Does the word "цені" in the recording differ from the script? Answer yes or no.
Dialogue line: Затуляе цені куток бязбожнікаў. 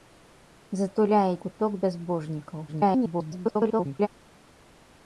yes